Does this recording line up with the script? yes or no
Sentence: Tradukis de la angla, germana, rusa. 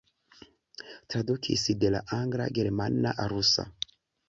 yes